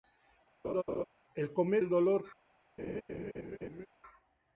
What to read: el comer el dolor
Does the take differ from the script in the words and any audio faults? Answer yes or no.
yes